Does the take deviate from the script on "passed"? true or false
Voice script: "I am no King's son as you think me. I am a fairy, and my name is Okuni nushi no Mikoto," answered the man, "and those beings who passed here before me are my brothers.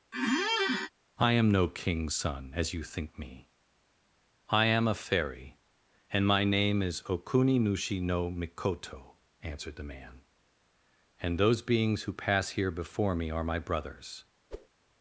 true